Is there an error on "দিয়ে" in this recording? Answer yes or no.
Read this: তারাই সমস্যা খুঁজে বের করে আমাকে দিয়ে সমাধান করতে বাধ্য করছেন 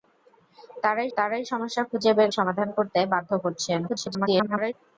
yes